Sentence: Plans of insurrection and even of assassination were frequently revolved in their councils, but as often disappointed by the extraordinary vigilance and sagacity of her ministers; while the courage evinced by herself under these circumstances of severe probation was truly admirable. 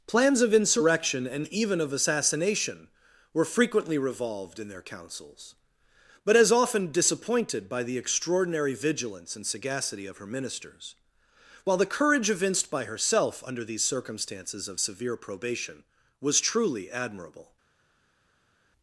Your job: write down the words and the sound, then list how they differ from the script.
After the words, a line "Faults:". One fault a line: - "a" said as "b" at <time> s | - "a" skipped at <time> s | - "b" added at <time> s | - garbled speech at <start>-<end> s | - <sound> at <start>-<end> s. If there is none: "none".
Plans of insurrection and even of assassination were frequently revolved in their councils, but as often disappointed by the extraordinary vigilance and sagacity of her ministers; while the courage evinced by herself under these circumstances of severe probation was truly admirable.
Faults:
none